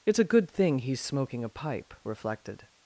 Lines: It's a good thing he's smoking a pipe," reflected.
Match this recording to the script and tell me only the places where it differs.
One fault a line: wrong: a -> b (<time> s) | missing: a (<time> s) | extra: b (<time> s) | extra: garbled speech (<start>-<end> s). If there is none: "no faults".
no faults